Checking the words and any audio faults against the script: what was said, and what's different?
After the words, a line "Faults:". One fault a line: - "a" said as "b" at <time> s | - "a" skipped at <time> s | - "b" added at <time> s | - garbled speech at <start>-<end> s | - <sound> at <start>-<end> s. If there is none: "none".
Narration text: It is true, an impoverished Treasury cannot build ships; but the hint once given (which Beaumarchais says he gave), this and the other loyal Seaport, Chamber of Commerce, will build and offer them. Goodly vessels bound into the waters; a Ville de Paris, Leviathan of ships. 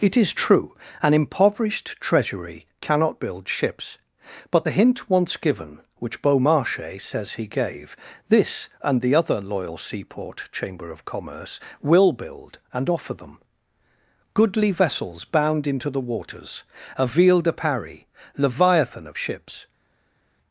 It is true, an impoverished Treasury cannot build ships; but the hint once given (which Beaumarchais says he gave), this and the other loyal Seaport, Chamber of Commerce, will build and offer them. Goodly vessels bound into the waters; a Ville de Paris, Leviathan of ships.
Faults:
none